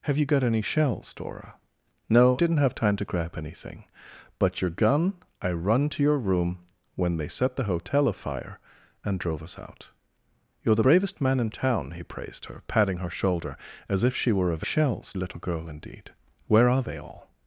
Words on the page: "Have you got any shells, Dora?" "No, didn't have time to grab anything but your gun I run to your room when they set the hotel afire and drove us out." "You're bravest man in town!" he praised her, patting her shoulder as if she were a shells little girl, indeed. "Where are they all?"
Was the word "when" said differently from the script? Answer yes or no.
no